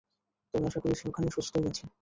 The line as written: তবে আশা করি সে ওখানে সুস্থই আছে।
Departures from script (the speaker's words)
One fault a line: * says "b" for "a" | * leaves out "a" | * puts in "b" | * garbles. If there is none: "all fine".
all fine